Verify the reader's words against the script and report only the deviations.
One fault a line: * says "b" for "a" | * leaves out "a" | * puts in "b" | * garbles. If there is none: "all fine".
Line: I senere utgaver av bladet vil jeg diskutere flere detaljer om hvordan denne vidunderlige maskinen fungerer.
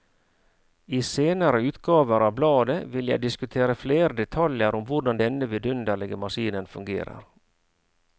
all fine